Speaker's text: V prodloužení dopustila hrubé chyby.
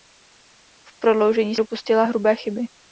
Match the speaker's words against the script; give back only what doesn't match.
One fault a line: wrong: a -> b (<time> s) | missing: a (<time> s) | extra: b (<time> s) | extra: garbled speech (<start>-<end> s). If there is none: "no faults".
no faults